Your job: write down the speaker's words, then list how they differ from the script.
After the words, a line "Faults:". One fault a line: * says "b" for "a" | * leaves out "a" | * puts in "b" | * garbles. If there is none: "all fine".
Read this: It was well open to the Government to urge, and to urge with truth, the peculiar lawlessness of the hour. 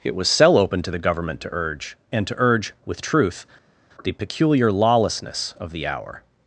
It was cell open to the Government to urge, and to urge with truth, the peculiar lawlessness of the hour.
Faults:
* says "cell" for "well"